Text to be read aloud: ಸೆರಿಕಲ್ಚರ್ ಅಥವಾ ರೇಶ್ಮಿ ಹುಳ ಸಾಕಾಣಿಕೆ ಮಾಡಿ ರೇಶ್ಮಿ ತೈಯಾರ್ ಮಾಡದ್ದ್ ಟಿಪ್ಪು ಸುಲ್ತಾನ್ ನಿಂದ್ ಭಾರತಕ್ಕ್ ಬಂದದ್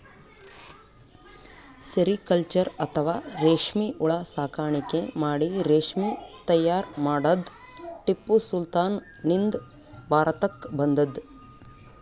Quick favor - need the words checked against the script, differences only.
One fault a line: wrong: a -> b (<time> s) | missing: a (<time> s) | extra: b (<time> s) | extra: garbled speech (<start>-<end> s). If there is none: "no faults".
no faults